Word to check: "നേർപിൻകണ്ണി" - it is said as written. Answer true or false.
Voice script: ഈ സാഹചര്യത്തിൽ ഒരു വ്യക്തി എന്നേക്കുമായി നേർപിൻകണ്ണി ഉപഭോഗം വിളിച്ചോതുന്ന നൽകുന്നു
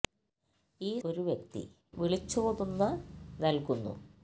false